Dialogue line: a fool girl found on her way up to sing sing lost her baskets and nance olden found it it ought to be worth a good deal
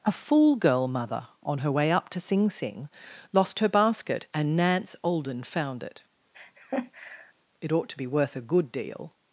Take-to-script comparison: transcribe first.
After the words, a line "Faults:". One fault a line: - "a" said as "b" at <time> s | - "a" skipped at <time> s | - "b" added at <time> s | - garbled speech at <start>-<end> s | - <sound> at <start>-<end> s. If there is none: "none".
a fool girl mother on her way up to sing sing lost her basket and nance olden found it it ought to be worth a good deal
Faults:
- "found" said as "mother" at 0.9 s
- "baskets" said as "basket" at 3.7 s
- laugh at 6.3-7.3 s